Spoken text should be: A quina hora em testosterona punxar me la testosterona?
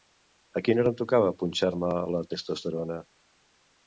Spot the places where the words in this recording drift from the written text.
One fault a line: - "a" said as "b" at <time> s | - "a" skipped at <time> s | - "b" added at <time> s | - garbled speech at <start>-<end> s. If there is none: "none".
- "testosterona" said as "tocava" at 1.0 s